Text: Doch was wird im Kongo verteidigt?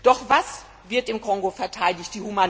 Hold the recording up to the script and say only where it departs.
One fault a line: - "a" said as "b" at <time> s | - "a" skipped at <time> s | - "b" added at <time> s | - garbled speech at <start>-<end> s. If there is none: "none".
none